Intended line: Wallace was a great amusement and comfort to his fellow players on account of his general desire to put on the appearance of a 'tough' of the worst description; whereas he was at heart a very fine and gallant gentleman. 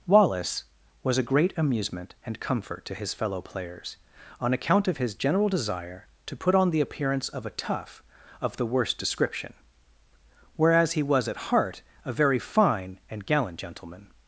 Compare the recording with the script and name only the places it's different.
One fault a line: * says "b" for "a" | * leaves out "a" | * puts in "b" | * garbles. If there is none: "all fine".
all fine